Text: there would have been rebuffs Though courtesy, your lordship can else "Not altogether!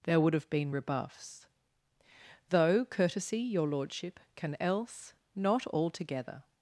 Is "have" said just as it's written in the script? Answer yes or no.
yes